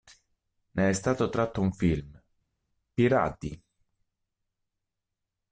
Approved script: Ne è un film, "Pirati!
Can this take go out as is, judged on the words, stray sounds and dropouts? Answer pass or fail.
fail